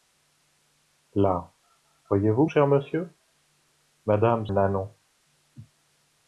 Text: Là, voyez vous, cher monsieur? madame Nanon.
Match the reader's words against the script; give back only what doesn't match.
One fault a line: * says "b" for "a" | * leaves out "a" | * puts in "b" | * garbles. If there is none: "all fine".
all fine